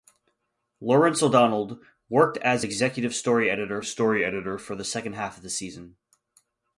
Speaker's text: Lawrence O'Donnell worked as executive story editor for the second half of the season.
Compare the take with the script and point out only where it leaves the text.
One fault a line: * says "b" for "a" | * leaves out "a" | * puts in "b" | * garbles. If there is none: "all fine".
* puts in "story editor"